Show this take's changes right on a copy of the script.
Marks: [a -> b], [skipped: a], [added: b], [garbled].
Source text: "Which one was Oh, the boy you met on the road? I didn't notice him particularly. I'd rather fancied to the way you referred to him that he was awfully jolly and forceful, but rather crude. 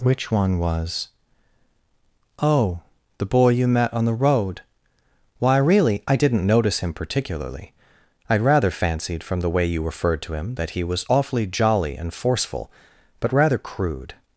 "Which one was Oh, the boy you met on the road? [added: Why really] I didn't notice him particularly. I'd rather fancied [to -> from] the way you referred to him that he was awfully jolly and forceful, but rather crude.